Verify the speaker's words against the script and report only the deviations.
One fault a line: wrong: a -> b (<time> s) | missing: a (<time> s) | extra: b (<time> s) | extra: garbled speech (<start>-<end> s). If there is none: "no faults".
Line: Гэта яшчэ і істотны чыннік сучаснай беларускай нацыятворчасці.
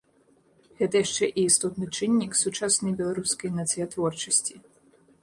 no faults